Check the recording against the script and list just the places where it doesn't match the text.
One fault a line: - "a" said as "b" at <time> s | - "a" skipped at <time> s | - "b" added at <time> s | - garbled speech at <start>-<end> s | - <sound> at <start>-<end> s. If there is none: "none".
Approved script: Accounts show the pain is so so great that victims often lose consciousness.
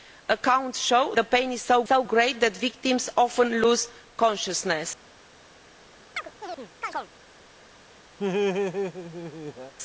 - chirp at 6.2-7.1 s
- laugh at 8.2-9.7 s